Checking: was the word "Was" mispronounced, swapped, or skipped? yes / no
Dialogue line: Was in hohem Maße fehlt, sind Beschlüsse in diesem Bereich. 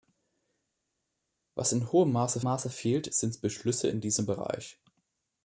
no